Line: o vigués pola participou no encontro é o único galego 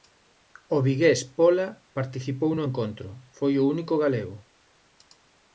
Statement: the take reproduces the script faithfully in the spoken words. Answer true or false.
false